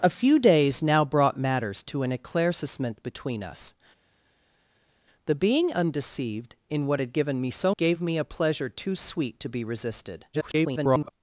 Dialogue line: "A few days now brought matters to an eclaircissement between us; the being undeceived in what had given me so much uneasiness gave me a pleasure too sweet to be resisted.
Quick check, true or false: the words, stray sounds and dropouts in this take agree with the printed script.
false